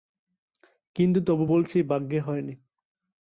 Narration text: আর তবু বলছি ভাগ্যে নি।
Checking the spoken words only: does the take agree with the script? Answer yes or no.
no